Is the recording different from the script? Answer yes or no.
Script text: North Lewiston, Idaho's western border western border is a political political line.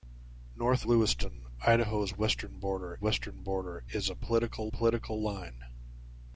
no